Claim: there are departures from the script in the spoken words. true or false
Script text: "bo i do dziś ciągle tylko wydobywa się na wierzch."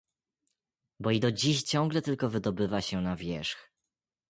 false